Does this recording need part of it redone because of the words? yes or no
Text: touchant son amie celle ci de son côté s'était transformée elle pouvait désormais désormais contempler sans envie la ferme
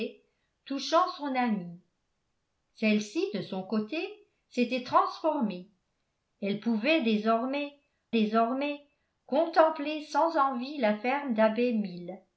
no